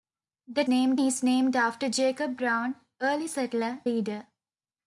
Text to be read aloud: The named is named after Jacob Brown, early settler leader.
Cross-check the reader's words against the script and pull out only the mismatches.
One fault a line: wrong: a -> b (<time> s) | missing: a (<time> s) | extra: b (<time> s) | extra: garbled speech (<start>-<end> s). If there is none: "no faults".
no faults